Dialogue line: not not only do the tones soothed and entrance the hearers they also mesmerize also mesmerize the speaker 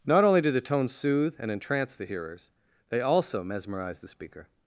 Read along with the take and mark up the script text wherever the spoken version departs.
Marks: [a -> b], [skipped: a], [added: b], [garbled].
not [skipped: not] only do the tones [soothed -> soothe] and entrance the hearers they also mesmerize [skipped: also mesmerize] the speaker